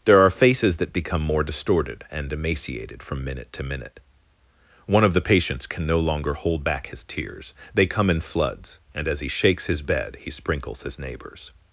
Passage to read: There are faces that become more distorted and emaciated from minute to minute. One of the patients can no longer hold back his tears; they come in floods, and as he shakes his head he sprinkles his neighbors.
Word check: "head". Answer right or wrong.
wrong